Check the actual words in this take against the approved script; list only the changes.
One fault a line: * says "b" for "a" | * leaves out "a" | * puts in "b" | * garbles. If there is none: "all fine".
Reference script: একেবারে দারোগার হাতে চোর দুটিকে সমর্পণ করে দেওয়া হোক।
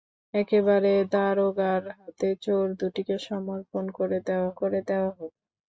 * puts in "করে দেওয়া"